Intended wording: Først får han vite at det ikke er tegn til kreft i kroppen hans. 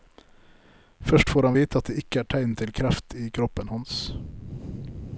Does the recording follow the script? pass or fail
pass